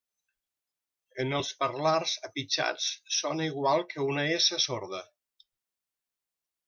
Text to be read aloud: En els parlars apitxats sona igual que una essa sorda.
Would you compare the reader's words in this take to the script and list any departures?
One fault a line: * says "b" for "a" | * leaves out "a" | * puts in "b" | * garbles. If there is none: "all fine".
all fine